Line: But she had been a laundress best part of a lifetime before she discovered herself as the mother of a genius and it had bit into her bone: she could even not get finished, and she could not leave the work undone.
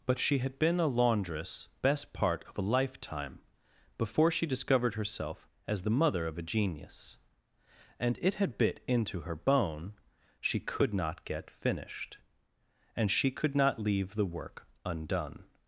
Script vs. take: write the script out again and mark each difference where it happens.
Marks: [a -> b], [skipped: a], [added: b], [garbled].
But she had been a laundress best part of a lifetime before she discovered herself as the mother of a genius and it had bit into her bone: she could [skipped: even] not get finished, and she could not leave the work undone.